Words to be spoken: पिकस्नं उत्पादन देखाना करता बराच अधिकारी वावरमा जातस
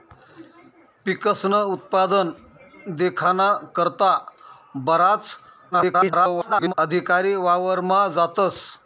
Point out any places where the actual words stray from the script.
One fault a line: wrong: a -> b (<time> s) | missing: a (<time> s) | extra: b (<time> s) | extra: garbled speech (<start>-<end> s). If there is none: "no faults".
extra: garbled speech (5.7-6.7 s)